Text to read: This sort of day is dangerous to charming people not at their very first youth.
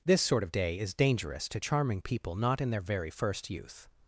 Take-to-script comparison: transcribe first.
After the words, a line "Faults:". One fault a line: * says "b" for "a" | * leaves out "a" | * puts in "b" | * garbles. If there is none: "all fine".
This sort of day is dangerous to charming people not in their very first youth.
Faults:
* says "in" for "at"